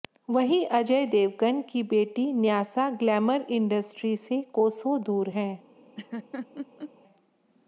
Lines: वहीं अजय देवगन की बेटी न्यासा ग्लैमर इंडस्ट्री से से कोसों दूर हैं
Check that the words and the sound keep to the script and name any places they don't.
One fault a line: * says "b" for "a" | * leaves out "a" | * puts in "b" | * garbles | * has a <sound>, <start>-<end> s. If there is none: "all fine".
* leaves out "से"
* has a laugh, 6.0-6.9 s